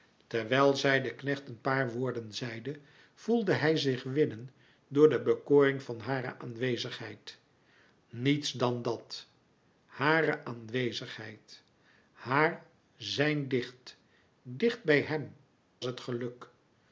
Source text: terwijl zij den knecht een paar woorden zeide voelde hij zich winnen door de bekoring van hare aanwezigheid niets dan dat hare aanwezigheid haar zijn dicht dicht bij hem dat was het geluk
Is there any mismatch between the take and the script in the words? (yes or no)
yes